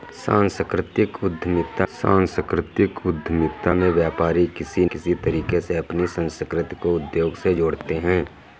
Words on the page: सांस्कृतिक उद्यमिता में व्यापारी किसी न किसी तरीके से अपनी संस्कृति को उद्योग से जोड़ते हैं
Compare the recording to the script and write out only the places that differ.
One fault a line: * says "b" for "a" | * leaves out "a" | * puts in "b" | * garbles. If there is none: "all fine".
* puts in "सांस्कृतिक उद्यमिता"
* leaves out "न"